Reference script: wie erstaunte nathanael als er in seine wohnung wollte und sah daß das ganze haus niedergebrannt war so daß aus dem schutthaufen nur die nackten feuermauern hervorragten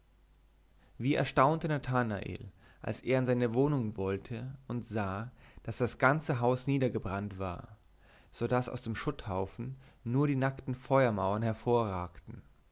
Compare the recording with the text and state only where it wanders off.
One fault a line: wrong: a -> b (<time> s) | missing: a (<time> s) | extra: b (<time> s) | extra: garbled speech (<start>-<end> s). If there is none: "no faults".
no faults